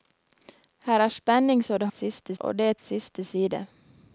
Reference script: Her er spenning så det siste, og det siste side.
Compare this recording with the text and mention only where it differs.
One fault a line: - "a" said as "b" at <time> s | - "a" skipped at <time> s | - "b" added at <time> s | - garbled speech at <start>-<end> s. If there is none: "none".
none